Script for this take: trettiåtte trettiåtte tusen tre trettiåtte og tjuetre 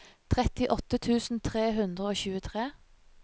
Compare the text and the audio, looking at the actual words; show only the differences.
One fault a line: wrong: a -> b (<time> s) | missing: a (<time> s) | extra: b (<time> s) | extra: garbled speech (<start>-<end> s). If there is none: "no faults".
missing: trettiåtte (1.0 s)
wrong: trettiåtte -> hundre (1.8 s)